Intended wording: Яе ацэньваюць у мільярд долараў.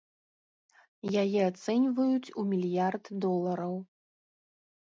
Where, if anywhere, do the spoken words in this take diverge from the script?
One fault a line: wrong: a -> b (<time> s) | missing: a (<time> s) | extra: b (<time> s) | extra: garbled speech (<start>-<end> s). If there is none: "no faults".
no faults